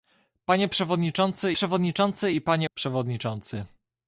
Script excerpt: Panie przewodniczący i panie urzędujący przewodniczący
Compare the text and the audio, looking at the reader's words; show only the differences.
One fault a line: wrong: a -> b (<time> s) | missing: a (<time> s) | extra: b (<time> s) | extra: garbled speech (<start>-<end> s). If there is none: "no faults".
extra: przewodniczący (1.5 s)
missing: urzędujący (2.7 s)